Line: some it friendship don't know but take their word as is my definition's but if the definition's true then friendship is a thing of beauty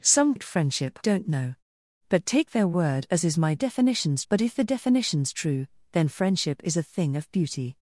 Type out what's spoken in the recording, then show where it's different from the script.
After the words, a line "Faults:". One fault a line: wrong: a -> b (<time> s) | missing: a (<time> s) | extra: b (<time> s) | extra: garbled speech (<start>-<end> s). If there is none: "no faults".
some it friendship don't know but take their word as is my definition's but if the definition's true then friendship is a thing of beauty
Faults:
no faults